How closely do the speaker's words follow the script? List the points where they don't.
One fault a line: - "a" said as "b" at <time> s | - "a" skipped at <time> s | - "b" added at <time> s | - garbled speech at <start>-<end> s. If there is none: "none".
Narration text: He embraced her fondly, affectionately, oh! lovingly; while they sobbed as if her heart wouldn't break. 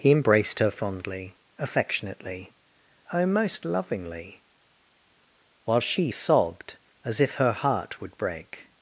- "most" added at 3.3 s
- "they" said as "she" at 5.8 s
- "wouldn't" said as "would" at 8.0 s